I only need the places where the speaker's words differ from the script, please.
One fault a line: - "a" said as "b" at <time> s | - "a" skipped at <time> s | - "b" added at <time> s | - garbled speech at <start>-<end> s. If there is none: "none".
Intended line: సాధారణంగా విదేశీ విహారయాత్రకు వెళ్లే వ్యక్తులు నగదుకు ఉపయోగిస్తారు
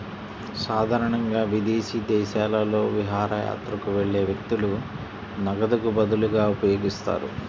- "దేశాలలో" added at 2.1 s
- "బదులుగా" added at 6.0 s